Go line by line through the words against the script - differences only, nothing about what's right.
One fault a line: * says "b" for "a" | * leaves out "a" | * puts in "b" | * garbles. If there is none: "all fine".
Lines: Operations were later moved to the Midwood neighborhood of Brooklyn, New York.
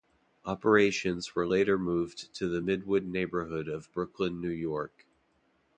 all fine